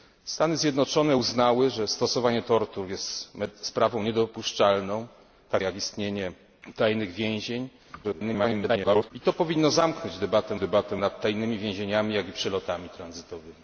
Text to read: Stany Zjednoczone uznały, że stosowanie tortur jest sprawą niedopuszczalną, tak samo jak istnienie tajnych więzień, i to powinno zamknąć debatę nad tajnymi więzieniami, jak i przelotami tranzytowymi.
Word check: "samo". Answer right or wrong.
wrong